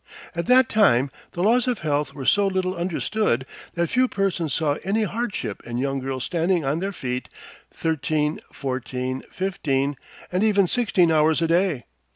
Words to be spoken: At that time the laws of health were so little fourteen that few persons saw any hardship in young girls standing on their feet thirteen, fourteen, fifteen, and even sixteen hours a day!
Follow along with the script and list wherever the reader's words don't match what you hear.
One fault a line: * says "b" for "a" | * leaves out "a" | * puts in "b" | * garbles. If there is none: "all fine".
* says "understood" for "fourteen"